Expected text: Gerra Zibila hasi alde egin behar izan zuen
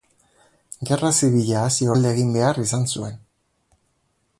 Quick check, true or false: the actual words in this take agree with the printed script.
true